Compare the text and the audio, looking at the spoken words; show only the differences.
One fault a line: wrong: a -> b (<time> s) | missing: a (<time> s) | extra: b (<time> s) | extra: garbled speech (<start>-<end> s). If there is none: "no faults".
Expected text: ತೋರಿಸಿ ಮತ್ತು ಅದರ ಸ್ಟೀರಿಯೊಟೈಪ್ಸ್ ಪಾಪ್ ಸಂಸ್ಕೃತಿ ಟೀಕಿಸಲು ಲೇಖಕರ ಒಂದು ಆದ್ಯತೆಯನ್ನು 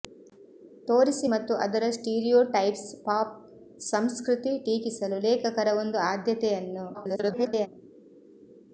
extra: garbled speech (6.9-7.7 s)